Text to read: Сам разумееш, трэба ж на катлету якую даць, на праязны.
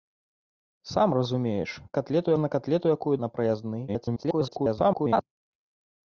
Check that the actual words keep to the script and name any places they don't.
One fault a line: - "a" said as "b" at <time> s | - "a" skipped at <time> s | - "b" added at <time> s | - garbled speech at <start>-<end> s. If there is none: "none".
- "трэба" said as "катлету" at 2.0 s
- "даць" skipped at 3.2 s
- garbled speech at 3.9-5.2 s